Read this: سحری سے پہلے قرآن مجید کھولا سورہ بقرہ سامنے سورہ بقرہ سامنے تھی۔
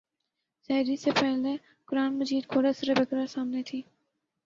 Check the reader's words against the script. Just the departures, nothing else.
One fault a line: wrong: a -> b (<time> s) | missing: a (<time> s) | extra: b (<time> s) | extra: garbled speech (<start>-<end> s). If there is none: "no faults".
missing: سورہ بقرہ سامنے (3.6 s)